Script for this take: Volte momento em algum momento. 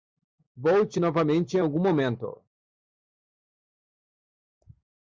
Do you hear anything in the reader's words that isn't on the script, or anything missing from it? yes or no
yes